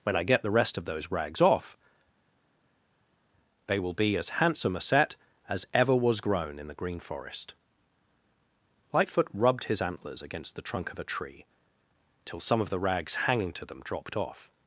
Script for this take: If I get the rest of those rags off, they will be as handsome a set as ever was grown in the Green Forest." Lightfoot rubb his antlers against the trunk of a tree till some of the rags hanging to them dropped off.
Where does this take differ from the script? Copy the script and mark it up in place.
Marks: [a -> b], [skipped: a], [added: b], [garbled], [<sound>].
[If -> When] I get the rest of those rags off, they will be as handsome a set as ever was grown in the Green Forest." Lightfoot [rubb -> rubbed] his antlers against the trunk of a tree till some of the rags hanging to them dropped off.